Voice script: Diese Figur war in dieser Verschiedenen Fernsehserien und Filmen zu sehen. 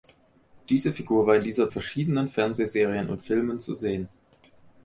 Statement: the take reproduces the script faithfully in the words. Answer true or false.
true